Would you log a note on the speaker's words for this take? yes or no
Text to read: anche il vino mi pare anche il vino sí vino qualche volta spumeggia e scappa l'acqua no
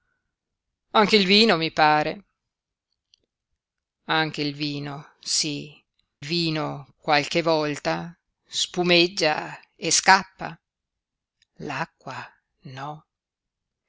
no